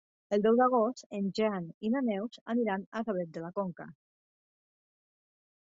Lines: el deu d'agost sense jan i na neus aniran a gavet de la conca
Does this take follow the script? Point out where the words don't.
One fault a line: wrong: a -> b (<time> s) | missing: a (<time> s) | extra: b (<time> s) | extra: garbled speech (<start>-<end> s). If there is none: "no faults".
wrong: sense -> en (1.2 s)